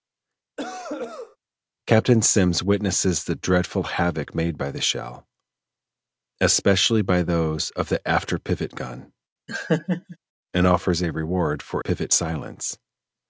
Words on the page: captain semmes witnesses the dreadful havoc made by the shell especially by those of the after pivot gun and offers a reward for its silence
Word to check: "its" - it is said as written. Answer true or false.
false